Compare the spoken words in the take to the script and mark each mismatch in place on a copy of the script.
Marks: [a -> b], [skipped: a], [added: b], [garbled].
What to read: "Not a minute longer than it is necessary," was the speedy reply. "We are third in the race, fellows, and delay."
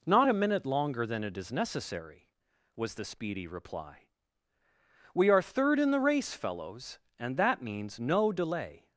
"Not a minute longer than it is necessary," was the speedy reply. "We are third in the race, fellows, and [added: that means no] delay."